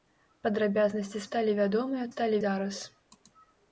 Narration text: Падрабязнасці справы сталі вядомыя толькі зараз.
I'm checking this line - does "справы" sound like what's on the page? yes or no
no